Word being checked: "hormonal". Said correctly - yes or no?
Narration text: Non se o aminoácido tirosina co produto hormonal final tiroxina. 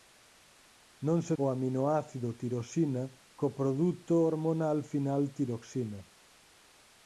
yes